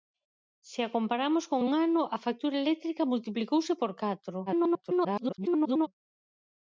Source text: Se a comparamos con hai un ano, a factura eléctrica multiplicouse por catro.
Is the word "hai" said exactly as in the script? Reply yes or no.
no